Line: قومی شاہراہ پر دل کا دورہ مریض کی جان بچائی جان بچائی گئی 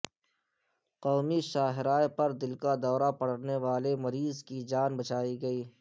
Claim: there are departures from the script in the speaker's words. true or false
true